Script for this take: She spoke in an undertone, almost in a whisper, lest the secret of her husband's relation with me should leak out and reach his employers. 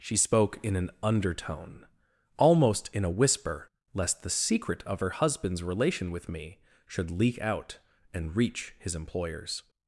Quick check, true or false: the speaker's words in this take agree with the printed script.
true